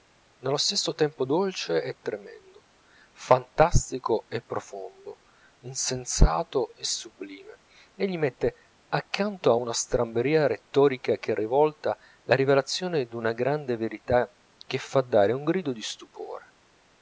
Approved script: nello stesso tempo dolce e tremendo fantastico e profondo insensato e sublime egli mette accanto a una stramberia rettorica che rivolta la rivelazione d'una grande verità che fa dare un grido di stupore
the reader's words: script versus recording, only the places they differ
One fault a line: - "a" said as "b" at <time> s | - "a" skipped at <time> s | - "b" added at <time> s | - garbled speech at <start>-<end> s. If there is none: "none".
none